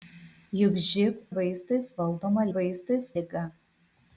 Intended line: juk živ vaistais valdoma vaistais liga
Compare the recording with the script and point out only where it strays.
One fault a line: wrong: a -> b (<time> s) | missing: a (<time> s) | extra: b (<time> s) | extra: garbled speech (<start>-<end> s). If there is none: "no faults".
no faults